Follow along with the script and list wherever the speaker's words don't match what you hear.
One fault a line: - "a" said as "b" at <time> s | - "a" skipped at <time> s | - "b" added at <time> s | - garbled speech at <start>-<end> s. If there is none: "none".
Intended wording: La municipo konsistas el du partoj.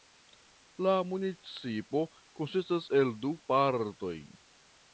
none